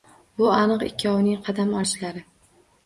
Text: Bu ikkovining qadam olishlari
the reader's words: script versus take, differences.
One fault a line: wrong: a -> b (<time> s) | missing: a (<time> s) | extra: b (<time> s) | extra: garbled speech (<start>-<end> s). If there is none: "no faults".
extra: aniq (0.5 s)